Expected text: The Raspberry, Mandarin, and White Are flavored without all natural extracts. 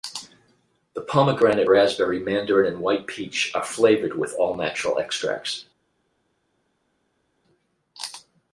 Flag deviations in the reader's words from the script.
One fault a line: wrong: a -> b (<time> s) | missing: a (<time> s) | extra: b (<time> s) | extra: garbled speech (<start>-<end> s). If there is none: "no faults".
extra: Pomegranate (1.0 s)
extra: Peach (3.0 s)
wrong: without -> with (4.2 s)